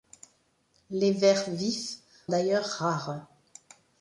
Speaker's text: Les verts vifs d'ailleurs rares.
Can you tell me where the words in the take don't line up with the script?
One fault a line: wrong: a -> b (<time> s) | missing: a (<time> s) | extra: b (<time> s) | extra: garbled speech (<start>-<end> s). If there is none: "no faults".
no faults